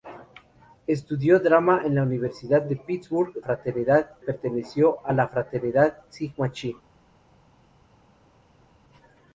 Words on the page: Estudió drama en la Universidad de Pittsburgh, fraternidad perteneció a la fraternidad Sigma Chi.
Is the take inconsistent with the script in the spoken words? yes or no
no